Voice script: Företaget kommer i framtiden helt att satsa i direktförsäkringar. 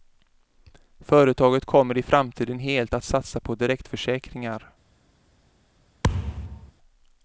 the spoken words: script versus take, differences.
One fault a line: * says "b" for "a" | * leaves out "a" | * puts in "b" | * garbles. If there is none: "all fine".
* says "på" for "i"